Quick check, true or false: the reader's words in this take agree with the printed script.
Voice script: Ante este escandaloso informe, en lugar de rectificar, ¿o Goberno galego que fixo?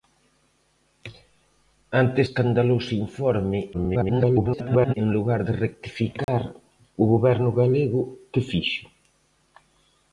false